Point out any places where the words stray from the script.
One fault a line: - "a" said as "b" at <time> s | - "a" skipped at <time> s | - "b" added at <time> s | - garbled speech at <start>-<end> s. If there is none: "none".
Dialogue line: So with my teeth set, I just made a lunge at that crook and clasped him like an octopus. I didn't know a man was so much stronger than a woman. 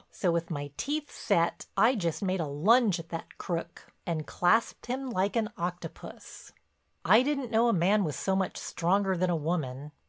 none